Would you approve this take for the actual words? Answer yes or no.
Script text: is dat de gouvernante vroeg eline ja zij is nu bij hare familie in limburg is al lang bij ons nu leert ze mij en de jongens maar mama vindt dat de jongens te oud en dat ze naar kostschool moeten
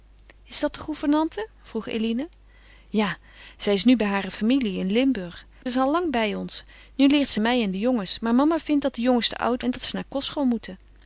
yes